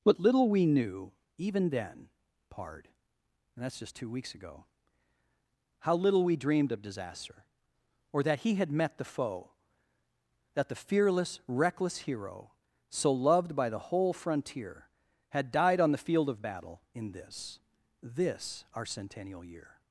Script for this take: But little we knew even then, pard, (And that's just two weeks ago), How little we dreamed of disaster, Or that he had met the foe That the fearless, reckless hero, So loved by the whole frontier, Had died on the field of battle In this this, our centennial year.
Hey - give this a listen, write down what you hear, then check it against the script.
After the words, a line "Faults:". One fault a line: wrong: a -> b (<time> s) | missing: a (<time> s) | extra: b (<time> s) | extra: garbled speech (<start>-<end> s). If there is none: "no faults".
But little we knew even then, pard, (And that's just two weeks ago), How little we dreamed of disaster, Or that he had met the foe That the fearless, reckless hero, So loved by the whole frontier, Had died on the field of battle In this this, our centennial year.
Faults:
no faults